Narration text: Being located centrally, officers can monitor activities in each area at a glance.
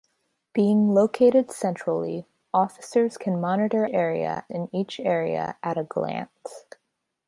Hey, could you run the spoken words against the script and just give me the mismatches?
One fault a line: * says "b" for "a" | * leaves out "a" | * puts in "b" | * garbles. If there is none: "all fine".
* says "area" for "activities"